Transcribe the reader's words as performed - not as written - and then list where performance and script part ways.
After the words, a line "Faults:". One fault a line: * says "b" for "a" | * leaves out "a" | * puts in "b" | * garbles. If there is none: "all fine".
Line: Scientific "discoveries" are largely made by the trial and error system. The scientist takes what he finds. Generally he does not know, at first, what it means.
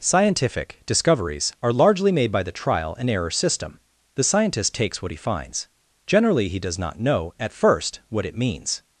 Scientific "discoveries" are largely made by the trial and error system. The scientist takes what he finds. Generally he does not know, at first, what it means.
Faults:
all fine